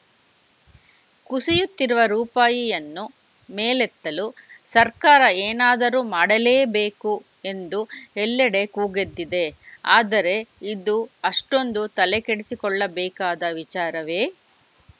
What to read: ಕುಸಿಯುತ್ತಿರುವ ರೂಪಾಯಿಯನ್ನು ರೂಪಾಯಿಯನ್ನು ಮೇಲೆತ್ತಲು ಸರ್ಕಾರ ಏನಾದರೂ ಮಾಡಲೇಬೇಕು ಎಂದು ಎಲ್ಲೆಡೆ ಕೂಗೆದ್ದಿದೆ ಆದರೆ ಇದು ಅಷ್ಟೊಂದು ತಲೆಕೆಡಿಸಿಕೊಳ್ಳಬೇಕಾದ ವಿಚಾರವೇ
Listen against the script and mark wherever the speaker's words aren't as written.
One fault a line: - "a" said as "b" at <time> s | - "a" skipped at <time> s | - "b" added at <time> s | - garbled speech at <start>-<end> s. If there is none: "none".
- "ರೂಪಾಯಿಯನ್ನು" skipped at 3.0 s